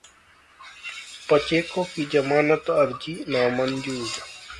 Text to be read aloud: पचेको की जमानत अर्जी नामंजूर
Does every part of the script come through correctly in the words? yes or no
yes